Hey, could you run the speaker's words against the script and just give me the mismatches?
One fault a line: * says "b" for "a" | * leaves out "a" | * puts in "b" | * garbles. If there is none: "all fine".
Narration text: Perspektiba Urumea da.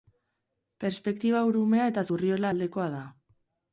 * puts in "eta Zurriola aldekoa"